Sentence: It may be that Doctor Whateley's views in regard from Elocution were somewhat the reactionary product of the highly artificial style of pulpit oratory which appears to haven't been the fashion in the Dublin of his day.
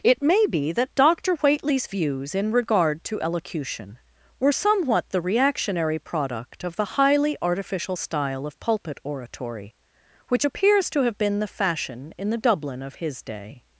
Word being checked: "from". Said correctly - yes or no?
no